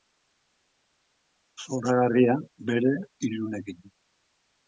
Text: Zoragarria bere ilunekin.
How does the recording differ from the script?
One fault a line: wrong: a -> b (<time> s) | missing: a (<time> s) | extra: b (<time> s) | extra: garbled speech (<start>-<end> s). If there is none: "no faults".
no faults